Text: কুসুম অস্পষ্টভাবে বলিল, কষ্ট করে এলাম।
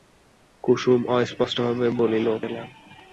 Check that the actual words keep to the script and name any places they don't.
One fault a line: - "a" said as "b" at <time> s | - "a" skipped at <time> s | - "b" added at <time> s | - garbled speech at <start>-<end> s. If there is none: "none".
- "কষ্ট করে" skipped at 2.3 s